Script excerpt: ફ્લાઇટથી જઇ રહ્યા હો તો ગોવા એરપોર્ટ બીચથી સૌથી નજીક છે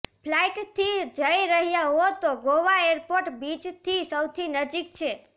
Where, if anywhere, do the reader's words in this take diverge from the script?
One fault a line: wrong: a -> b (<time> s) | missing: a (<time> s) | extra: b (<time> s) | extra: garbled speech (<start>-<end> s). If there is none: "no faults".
no faults